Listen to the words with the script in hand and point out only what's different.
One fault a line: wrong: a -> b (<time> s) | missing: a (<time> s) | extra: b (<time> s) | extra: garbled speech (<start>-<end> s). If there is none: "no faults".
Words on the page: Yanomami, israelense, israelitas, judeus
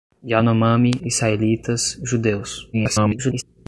missing: israelense (0.9 s)
extra: garbled speech (2.7-3.4 s)